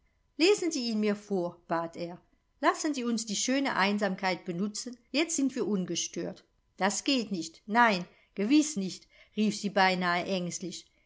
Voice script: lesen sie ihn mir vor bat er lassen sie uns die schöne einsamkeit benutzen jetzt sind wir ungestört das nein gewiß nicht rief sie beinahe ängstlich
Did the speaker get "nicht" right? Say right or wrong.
right